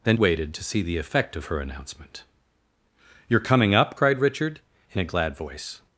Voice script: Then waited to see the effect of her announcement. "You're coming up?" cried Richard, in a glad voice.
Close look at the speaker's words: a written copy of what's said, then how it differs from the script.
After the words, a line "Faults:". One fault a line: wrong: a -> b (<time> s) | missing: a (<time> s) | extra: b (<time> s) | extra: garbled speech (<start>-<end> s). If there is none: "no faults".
Then waited to see the effect of her announcement. "You're coming up?" cried Richard, in a glad voice.
Faults:
no faults